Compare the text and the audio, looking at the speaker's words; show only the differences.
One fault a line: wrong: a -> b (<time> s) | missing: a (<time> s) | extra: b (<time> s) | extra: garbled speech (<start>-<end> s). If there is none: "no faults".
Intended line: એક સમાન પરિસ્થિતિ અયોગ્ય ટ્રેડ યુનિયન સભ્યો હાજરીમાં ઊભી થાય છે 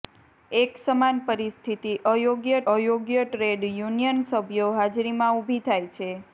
extra: અયોગ્ય (2.7 s)